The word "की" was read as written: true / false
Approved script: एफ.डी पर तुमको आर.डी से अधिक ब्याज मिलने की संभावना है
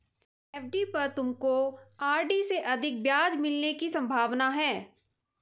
true